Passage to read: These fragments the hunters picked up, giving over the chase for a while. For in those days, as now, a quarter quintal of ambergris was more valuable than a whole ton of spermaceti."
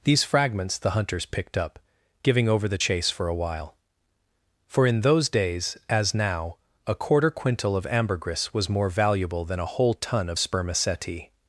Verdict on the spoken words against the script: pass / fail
pass